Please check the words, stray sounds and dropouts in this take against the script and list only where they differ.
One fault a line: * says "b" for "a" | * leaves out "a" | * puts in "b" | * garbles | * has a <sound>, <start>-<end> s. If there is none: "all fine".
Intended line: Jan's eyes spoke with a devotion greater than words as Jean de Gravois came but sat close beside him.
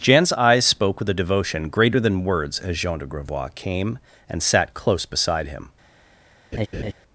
* says "and" for "but"
* has a laugh, 6.5-6.9 s